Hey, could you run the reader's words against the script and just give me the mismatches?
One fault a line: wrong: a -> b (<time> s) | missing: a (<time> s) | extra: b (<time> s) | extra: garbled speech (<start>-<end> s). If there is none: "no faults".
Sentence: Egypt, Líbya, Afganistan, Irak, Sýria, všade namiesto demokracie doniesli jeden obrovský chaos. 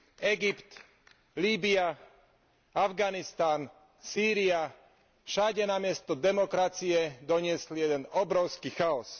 missing: Irak (3.7 s)